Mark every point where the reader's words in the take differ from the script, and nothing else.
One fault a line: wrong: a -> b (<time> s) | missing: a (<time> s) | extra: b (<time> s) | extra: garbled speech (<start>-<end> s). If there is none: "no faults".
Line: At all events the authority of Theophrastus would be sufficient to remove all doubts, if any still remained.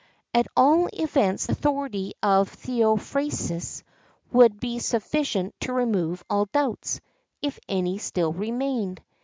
missing: the (1.4 s)